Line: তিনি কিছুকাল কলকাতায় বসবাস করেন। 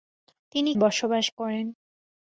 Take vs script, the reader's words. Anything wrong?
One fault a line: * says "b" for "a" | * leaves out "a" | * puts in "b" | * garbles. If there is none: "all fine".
* leaves out "কিছুকাল কলকাতায়"